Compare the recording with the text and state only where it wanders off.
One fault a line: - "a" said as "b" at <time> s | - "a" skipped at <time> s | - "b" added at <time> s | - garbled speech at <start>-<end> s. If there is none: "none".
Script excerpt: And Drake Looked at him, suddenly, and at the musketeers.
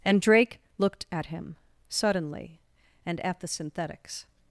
- "musketeers" said as "synthetics" at 3.5 s